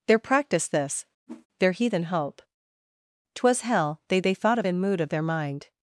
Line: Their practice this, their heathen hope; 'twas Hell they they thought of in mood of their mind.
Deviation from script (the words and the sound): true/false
true